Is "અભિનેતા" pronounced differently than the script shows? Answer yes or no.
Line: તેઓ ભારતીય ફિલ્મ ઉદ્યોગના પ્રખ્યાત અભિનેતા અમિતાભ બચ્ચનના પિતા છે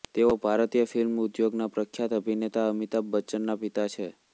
no